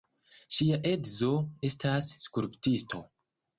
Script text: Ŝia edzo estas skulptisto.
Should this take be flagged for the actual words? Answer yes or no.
no